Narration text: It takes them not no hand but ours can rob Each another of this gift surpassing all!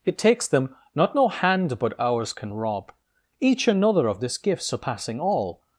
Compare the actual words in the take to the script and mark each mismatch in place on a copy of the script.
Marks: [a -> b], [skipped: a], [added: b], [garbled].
It takes them not no hand but ours can rob Each another of this gift surpassing all!